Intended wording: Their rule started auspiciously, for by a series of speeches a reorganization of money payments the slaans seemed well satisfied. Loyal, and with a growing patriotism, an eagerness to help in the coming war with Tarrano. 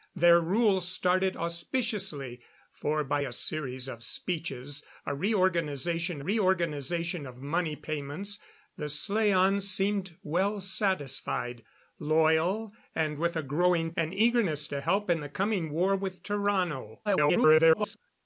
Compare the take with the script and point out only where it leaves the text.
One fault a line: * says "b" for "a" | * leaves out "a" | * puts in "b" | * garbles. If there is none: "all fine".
* puts in "reorganization"
* leaves out "patriotism"
* garbles